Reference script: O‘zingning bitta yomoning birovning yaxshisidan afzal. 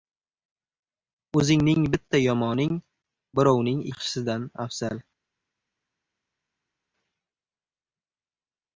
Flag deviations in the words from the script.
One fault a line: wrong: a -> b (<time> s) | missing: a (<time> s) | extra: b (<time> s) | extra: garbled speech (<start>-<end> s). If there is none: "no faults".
no faults